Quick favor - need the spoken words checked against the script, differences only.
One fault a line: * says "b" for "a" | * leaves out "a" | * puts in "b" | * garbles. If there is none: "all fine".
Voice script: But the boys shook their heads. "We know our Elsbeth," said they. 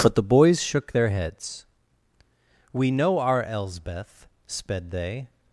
* says "sped" for "said"